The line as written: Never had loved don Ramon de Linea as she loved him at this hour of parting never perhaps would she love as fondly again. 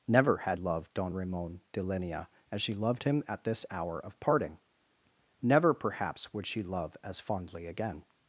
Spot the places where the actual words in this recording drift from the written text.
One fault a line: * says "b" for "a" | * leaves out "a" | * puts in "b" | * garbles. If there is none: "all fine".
all fine